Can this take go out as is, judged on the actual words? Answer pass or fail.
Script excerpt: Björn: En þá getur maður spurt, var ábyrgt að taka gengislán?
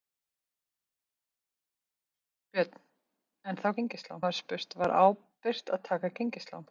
fail